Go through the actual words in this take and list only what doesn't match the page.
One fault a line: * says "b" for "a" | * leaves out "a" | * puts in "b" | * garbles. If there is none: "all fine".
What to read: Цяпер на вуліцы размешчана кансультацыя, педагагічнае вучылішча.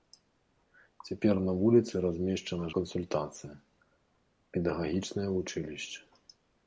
all fine